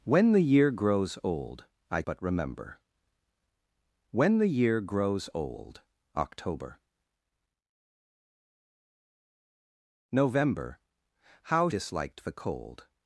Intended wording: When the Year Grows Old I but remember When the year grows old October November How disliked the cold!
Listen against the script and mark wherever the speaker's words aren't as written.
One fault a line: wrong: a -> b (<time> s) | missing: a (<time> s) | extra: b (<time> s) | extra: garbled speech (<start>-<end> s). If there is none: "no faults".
no faults